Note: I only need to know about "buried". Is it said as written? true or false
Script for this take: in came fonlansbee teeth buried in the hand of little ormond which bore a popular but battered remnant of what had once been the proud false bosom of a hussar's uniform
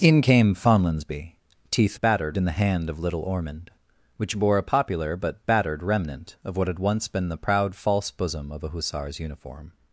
false